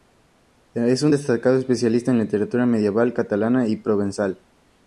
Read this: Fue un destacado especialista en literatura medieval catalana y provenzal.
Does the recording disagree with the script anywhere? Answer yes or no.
yes